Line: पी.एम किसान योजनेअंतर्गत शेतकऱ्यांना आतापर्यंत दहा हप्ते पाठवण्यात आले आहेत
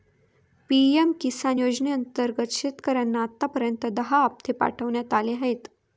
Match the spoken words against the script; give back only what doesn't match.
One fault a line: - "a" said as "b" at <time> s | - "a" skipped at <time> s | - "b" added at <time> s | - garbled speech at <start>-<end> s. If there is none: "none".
none